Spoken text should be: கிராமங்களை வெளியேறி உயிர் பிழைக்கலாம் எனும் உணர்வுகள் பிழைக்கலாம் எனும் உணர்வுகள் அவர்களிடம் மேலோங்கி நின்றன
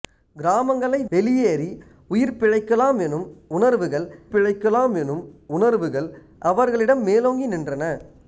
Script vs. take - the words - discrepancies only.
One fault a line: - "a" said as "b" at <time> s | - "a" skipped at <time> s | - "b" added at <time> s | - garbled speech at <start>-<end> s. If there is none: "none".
none